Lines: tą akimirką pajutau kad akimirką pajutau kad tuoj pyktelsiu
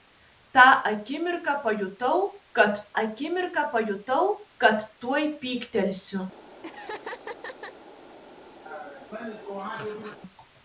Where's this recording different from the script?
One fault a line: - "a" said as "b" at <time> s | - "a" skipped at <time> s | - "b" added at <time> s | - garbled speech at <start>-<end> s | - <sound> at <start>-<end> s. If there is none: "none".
- laugh at 6.6-7.7 s
- laugh at 8.7-10.2 s